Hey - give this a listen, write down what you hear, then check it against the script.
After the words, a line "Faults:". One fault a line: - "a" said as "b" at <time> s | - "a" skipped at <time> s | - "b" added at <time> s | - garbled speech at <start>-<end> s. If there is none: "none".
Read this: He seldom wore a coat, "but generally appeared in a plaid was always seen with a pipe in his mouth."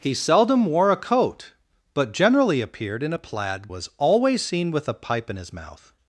He seldom wore a coat, "but generally appeared in a plaid was always seen with a pipe in his mouth."
Faults:
none